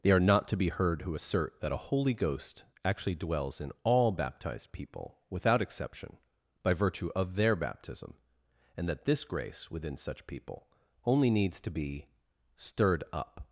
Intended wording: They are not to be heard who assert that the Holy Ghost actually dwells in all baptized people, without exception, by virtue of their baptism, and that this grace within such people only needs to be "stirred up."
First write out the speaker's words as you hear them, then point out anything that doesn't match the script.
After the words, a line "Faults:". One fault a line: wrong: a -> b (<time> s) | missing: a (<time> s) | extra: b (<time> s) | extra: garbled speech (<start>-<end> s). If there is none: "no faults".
They are not to be heard who assert that a Holy Ghost actually dwells in all baptized people, without exception, by virtue of their baptism, and that this grace within such people only needs to be "stirred up."
Faults:
wrong: the -> a (1.7 s)